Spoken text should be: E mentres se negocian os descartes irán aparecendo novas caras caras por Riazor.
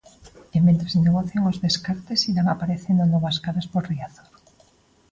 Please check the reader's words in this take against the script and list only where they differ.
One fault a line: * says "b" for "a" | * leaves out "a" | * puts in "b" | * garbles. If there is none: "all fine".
* leaves out "caras"